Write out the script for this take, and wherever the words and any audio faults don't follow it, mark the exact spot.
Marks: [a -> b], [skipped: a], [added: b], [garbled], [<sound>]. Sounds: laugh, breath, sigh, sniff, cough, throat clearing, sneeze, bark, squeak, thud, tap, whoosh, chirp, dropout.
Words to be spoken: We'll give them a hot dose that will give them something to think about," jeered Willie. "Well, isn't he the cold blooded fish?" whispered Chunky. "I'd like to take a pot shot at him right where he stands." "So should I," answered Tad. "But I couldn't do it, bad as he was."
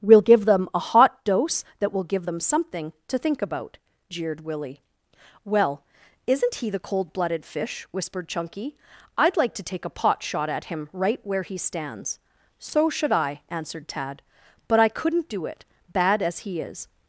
We'll give them a hot dose that will give them something to think about," jeered Willie. "Well, isn't he the cold blooded fish?" whispered Chunky. "I'd like to take a pot shot at him right where he stands." "So should I," answered Tad. "But I couldn't do it, bad as he [was." -> is]